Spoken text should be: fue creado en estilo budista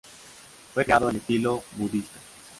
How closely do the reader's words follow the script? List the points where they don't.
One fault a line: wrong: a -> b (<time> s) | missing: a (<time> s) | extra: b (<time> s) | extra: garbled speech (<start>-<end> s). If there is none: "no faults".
no faults